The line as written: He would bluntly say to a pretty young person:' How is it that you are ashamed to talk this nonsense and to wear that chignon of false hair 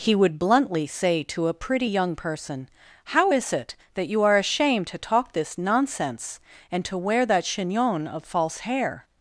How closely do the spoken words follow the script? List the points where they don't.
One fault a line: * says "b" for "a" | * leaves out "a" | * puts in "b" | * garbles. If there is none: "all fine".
all fine